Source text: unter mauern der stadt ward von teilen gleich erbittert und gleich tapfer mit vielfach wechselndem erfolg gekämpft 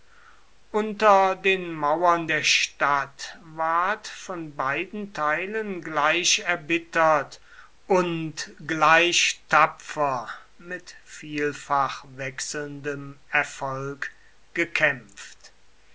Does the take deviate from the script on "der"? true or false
false